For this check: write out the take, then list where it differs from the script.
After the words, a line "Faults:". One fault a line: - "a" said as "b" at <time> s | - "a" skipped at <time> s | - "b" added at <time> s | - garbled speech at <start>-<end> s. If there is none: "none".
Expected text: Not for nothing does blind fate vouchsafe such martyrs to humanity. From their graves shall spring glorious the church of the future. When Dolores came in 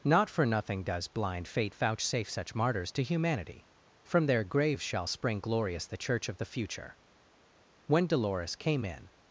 Not for nothing does blind fate vouchsafe such martyrs to humanity. From their graves shall spring glorious the church of the future. When Dolores came in
Faults:
none